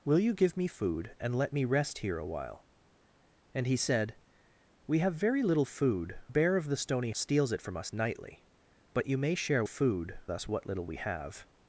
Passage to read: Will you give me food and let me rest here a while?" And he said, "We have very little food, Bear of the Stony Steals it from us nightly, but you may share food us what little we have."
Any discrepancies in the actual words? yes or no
no